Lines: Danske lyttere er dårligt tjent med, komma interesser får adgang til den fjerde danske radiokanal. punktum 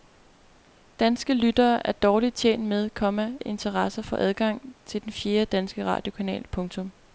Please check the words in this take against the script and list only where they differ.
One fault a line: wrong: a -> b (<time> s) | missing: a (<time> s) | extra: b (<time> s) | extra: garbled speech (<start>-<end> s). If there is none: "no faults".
no faults